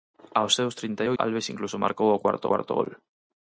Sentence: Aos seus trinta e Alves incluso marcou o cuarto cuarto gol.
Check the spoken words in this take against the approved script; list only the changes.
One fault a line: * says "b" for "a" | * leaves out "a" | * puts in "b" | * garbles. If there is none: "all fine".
all fine